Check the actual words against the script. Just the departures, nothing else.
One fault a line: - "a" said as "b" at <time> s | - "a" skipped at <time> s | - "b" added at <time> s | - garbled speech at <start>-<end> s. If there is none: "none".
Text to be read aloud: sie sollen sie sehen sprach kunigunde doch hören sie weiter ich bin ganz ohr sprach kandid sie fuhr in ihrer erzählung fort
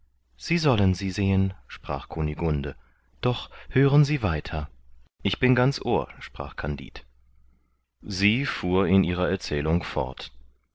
none